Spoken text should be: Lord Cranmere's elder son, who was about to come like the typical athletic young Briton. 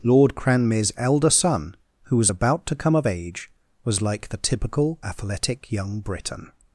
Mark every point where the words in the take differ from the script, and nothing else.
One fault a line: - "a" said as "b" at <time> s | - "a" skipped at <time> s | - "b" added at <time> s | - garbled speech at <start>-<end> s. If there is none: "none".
- "of age was" added at 2.9 s